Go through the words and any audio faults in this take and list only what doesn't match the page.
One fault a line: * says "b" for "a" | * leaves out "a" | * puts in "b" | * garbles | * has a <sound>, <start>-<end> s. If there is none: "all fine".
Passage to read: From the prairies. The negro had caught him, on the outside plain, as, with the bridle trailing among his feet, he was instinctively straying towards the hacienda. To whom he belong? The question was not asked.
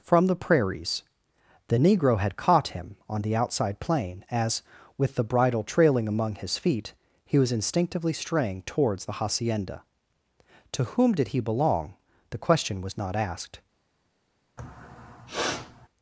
* puts in "did"
* has a sniff, 14.6-15.9 s